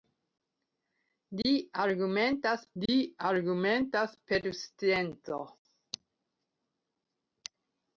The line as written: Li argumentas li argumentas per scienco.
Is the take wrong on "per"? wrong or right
right